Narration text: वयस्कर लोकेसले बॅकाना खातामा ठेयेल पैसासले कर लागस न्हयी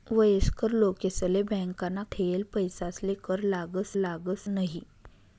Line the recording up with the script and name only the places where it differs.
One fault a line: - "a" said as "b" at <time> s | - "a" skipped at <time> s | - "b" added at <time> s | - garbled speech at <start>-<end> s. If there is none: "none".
- "खातामा" skipped at 2.0 s
- "लागस" added at 4.0 s